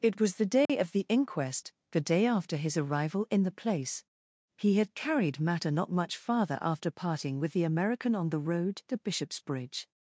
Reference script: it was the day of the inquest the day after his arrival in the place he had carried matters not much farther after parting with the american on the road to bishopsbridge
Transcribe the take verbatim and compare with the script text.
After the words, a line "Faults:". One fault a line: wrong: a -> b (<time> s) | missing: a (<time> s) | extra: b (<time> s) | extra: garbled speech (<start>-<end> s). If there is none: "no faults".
it was the day of the inquest the day after his arrival in the place he had carried matter not much farther after parting with the american on the road to bishopsbridge
Faults:
wrong: matters -> matter (5.4 s)